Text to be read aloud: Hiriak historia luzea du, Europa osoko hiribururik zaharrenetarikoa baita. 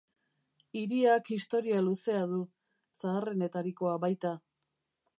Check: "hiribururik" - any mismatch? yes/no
yes